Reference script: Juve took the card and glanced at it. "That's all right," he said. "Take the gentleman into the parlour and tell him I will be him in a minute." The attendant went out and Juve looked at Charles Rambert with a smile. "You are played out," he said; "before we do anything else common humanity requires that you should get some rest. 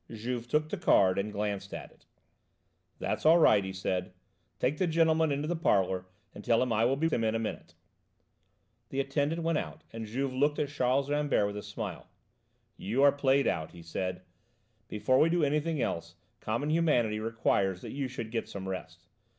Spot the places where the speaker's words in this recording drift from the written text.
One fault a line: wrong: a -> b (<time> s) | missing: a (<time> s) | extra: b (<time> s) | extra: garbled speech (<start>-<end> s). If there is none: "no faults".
no faults